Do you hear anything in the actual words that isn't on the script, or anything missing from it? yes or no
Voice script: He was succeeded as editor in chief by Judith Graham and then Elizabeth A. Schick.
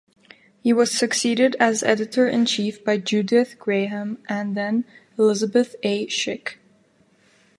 no